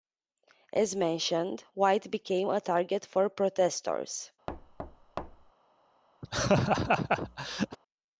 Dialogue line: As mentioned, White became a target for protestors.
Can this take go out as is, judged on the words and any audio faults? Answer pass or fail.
fail